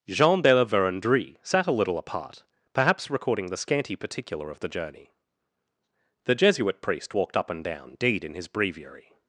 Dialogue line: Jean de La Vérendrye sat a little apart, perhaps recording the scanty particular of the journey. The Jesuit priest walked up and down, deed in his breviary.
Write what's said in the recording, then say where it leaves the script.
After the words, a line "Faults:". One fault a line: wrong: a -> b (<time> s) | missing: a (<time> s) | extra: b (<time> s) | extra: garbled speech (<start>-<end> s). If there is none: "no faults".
Jean de La Vérendrye sat a little apart, perhaps recording the scanty particular of the journey. The Jesuit priest walked up and down, deed in his breviary.
Faults:
no faults